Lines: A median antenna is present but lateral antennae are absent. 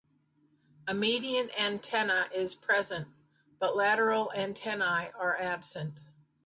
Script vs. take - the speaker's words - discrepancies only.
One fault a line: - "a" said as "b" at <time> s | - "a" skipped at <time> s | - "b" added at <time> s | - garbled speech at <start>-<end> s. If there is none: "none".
none